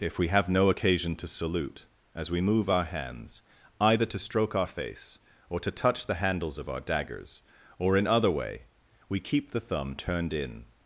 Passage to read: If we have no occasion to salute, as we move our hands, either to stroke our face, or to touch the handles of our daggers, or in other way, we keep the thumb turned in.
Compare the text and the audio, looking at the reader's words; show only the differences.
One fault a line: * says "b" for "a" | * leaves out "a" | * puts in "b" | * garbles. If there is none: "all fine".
all fine